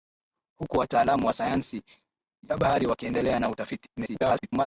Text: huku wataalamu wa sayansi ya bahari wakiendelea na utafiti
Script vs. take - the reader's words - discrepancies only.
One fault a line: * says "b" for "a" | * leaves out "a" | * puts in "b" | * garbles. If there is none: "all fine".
* garbles